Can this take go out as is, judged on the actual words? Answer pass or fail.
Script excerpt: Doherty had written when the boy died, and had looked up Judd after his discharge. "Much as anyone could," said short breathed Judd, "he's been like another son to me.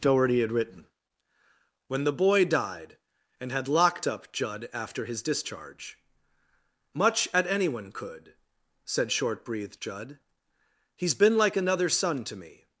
fail